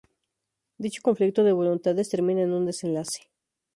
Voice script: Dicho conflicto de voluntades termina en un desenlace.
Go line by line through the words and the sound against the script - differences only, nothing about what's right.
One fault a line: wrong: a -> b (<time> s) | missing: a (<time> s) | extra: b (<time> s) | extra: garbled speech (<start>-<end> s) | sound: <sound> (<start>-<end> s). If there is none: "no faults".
no faults